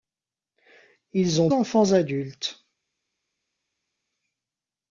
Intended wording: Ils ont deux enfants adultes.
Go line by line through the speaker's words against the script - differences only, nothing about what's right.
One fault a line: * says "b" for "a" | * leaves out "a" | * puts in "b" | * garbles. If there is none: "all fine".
* leaves out "deux"